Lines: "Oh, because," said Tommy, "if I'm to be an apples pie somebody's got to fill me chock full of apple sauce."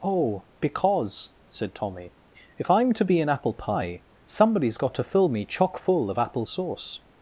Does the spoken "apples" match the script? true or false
false